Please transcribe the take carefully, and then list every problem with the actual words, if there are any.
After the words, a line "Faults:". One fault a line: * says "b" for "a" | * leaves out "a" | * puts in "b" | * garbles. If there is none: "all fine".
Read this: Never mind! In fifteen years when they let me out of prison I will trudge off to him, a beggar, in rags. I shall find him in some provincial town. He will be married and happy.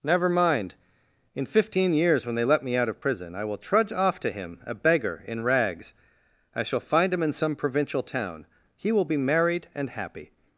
Never mind! In fifteen years when they let me out of prison I will trudge off to him, a beggar, in rags. I shall find him in some provincial town. He will be married and happy.
Faults:
all fine